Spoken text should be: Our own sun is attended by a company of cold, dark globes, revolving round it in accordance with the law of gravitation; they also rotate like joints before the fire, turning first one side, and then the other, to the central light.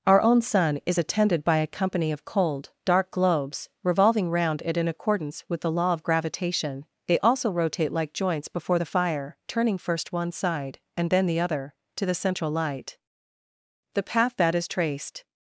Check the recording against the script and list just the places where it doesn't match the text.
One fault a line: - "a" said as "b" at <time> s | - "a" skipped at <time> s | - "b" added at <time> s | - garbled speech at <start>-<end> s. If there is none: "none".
- "The path that is traced" added at 13.9 s